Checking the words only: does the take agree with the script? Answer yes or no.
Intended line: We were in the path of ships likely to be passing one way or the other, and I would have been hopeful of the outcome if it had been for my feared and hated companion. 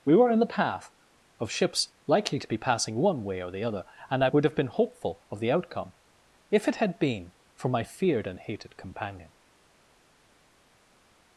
yes